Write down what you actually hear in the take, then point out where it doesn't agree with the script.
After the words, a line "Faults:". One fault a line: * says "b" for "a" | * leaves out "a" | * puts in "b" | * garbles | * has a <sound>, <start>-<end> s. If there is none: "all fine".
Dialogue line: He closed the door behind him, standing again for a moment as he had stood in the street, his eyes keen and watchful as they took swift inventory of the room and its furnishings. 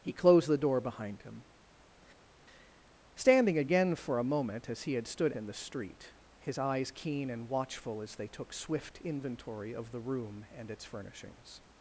He closed the door behind him, standing again for a moment as he had stood in the street, his eyes keen and watchful as they took swift inventory of the room and its furnishings.
Faults:
all fine